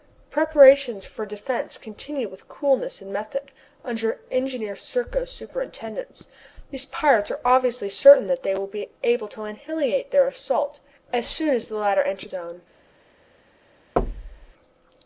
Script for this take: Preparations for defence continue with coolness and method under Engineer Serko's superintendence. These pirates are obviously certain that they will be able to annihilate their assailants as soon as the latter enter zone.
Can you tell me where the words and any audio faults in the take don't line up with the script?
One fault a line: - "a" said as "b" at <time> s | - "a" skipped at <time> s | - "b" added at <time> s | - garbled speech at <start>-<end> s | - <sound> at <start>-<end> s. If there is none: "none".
- thud at 14.0-14.5 s